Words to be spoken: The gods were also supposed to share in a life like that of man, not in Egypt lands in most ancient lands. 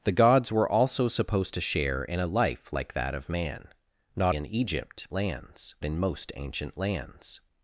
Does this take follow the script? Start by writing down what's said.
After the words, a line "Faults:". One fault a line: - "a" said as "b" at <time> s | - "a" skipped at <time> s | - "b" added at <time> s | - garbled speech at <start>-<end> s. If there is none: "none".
The gods were also supposed to share in a life like that of man, not in Egypt lands in most ancient lands.
Faults:
none